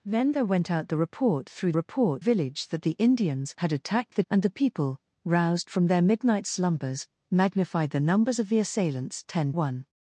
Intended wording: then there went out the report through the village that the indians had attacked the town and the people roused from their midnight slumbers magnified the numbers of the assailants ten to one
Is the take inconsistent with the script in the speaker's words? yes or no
yes